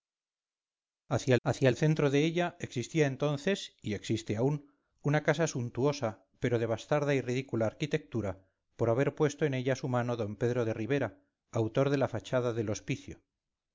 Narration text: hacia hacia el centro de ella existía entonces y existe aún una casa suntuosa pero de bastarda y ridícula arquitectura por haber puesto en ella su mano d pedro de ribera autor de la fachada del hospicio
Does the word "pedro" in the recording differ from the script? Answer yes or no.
no